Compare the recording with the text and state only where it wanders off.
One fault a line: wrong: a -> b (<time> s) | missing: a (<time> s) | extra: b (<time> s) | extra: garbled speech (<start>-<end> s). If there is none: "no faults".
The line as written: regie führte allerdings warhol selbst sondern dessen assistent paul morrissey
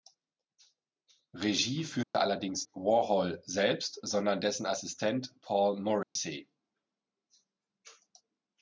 no faults